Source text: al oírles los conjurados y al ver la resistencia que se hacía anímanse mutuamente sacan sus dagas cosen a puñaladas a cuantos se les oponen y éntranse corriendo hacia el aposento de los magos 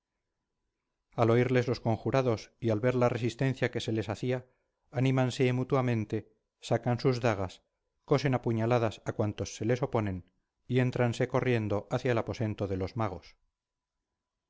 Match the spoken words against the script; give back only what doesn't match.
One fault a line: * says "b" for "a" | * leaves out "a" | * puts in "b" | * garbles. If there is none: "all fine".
* puts in "les"